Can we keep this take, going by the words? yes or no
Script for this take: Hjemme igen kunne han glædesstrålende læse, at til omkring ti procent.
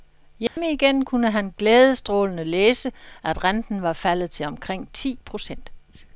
no